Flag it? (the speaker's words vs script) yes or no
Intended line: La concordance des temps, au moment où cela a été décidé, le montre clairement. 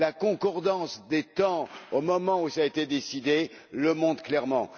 no